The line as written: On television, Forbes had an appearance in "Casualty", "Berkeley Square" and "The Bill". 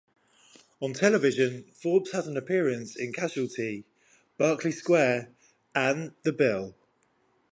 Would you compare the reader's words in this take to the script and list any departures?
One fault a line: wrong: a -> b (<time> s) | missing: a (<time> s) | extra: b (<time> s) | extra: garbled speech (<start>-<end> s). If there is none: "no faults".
no faults